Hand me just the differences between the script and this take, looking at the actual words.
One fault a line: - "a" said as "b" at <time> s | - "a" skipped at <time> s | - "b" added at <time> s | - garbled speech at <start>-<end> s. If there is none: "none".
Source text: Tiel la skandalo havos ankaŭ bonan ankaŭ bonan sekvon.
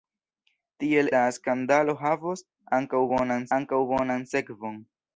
none